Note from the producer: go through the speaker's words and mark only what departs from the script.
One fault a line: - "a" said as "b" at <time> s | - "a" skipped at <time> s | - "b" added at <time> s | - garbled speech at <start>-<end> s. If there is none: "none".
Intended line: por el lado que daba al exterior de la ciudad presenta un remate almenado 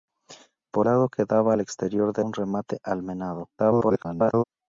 - "el" skipped at 0.9 s
- "la ciudad presenta" skipped at 2.2 s
- garbled speech at 3.6-4.4 s